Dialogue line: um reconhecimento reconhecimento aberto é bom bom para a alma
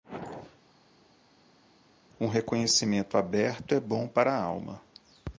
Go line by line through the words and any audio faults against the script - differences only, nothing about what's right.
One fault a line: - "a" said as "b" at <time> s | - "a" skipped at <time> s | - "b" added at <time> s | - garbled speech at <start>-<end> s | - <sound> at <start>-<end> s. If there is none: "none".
- "reconhecimento" skipped at 3.2 s
- "bom" skipped at 4.1 s